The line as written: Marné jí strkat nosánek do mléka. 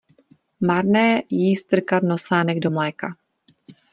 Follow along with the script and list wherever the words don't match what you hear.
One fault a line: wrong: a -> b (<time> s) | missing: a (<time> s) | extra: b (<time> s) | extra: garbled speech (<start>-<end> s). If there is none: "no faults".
no faults